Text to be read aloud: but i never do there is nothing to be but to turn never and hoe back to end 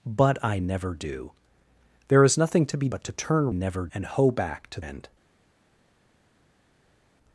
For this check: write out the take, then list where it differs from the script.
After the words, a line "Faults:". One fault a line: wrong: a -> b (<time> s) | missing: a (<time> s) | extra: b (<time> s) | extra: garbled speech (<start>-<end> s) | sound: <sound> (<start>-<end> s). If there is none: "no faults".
but i never do there is nothing to be but to turn never and hoe back to end
Faults:
no faults